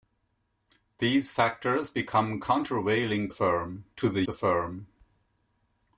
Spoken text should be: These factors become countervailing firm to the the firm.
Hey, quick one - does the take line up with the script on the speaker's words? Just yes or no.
yes